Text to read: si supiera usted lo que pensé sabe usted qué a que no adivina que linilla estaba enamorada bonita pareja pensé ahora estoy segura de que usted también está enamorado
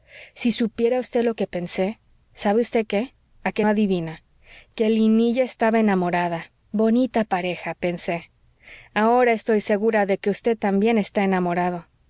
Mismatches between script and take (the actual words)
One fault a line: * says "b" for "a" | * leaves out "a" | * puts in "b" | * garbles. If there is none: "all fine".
* leaves out "no"